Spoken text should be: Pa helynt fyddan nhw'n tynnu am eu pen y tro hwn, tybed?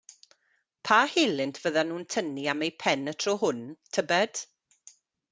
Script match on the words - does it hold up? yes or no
yes